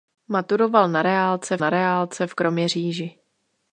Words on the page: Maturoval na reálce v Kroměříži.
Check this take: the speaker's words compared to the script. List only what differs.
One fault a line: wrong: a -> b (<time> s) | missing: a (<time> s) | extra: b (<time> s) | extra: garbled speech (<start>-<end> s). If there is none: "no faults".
extra: na reálce (1.6 s)